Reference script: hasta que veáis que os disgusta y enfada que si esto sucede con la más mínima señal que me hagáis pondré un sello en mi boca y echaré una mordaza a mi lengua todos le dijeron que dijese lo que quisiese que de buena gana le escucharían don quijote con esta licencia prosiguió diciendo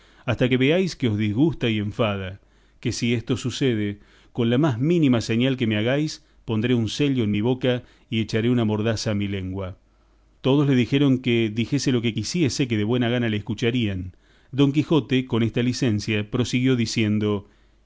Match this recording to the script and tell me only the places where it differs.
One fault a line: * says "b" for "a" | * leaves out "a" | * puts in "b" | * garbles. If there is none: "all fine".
all fine